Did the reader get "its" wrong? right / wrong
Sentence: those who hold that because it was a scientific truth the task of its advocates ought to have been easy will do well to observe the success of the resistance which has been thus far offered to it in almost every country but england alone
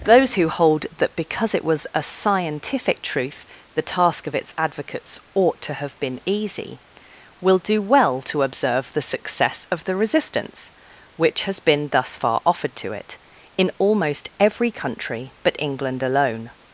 right